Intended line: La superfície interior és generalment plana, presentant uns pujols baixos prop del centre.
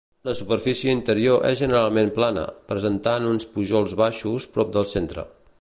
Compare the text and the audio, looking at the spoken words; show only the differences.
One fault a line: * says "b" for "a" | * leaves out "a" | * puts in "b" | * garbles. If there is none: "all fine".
all fine